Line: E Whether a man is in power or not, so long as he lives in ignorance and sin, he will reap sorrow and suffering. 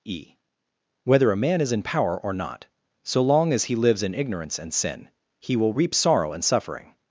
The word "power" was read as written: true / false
true